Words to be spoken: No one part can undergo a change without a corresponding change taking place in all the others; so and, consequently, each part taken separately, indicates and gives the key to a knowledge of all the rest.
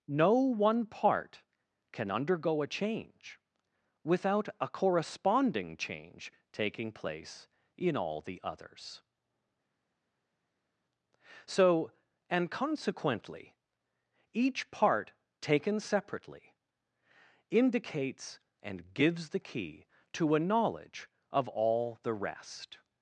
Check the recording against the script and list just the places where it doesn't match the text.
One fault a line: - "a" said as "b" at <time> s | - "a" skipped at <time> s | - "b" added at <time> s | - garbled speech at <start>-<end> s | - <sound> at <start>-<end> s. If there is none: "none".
none